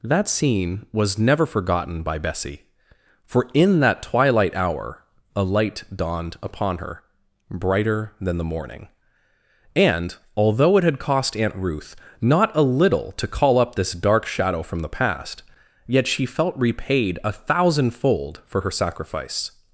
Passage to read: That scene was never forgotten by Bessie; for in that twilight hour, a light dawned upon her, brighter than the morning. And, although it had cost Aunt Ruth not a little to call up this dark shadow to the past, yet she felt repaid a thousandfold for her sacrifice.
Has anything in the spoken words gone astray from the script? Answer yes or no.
yes